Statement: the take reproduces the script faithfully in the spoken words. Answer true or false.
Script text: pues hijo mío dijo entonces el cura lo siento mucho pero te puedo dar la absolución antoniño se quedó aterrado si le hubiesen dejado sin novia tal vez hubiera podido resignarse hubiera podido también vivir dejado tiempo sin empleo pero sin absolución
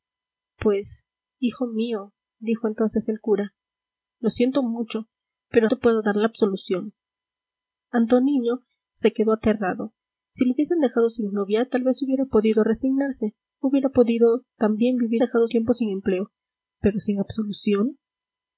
true